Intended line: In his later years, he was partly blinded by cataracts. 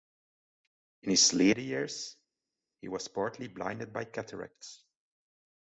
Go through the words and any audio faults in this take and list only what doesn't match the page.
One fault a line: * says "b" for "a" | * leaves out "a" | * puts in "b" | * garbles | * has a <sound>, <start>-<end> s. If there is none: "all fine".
all fine